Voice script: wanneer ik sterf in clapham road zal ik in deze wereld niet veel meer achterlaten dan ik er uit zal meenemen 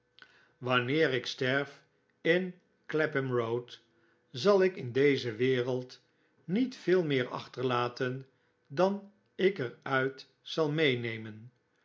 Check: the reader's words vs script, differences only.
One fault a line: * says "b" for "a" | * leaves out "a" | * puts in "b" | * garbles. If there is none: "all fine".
all fine